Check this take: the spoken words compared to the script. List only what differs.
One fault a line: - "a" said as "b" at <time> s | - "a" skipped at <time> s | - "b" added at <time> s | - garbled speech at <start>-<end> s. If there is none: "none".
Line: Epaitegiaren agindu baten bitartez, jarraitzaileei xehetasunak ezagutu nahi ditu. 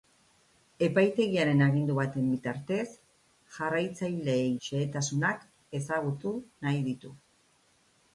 none